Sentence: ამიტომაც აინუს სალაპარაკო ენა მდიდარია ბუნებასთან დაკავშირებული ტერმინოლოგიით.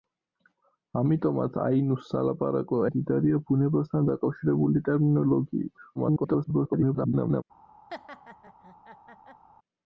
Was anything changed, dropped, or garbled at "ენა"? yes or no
yes